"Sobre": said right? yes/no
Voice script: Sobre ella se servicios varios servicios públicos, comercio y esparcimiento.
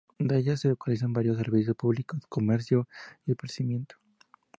no